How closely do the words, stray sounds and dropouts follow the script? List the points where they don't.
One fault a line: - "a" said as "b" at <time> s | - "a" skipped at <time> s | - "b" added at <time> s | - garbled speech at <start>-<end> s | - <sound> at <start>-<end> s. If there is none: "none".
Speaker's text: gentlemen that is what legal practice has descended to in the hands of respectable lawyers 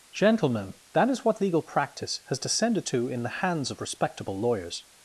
none